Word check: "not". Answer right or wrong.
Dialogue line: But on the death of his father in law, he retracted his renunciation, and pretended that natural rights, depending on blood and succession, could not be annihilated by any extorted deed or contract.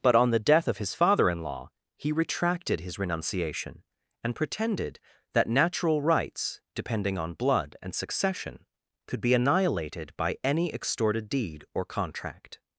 wrong